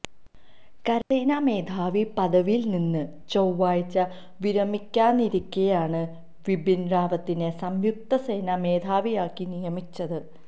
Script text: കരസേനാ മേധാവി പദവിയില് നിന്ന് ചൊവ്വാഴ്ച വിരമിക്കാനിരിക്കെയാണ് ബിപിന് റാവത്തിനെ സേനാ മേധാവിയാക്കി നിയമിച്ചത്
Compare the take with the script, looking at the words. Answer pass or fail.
fail